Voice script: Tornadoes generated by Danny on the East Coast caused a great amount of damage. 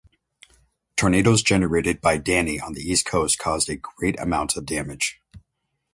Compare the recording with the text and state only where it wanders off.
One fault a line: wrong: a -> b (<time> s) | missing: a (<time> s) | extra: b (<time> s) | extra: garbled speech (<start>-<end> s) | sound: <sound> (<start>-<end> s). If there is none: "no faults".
no faults